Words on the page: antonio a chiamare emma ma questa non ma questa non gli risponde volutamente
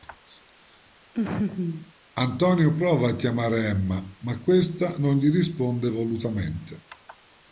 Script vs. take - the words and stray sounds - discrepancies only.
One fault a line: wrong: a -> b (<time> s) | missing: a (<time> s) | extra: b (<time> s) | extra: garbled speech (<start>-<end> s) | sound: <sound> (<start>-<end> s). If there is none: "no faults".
sound: laugh (1.1-1.9 s)
extra: prova (2.7 s)
missing: ma questa non (5.2 s)